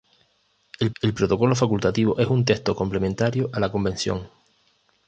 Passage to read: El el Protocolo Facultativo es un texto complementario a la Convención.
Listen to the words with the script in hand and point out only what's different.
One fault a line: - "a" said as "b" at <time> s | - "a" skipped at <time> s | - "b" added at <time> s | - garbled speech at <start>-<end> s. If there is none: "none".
none